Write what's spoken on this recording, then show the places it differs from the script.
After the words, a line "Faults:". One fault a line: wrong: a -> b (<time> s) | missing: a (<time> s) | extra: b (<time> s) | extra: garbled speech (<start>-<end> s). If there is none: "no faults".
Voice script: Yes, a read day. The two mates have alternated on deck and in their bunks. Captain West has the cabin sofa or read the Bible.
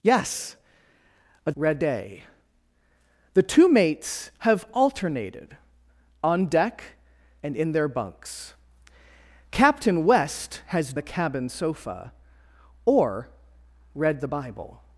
Yes, a read day. The two mates have alternated on deck and in their bunks. Captain West has the cabin sofa or read the Bible.
Faults:
no faults